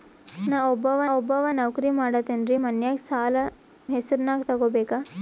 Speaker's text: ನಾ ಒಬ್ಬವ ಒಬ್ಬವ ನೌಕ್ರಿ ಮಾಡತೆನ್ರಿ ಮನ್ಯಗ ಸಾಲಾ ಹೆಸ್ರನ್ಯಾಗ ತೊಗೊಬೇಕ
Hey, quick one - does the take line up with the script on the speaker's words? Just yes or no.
yes